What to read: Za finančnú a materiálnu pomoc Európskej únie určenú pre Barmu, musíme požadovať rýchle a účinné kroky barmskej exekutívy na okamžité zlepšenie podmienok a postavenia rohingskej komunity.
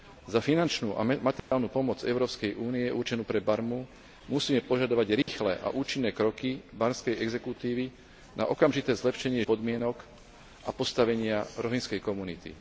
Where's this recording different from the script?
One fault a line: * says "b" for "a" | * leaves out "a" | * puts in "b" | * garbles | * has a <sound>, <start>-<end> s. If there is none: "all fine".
* has a dropout, 1.4-1.5 s
* has a dropout, 5.2-5.3 s